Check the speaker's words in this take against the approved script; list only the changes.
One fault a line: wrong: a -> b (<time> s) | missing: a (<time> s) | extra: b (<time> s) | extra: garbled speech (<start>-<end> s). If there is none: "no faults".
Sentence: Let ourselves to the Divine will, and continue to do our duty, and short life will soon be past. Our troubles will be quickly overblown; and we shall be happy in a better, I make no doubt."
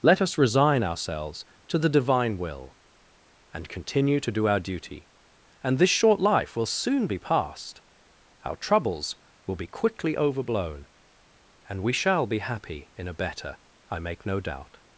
extra: us resign (0.2 s)
extra: this (5.8 s)